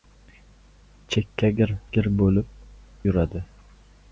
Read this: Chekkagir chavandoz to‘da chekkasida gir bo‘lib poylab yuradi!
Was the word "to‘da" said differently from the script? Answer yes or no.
yes